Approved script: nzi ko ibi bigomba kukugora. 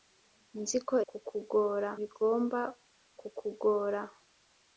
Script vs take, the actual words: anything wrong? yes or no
yes